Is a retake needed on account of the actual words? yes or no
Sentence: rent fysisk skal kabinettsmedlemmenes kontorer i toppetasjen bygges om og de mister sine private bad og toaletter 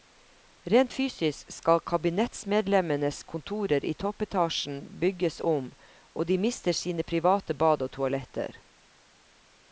no